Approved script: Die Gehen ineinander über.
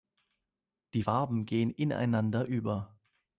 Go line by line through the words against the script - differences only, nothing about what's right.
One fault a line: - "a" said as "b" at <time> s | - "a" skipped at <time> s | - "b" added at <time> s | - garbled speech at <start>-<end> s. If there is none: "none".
- "Farben" added at 1.0 s